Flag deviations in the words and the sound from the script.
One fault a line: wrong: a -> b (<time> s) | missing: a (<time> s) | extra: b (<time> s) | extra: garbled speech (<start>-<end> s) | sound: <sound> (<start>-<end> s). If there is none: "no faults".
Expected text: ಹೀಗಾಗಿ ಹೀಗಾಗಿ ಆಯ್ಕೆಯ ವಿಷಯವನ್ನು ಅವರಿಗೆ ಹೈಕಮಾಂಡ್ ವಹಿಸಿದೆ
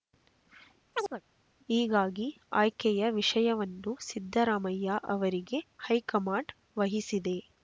sound: chirp (0.9-1.2 s)
missing: ಹೀಗಾಗಿ (2.3 s)
extra: ಸಿದ್ದರಾಮಯ್ಯ (4.1 s)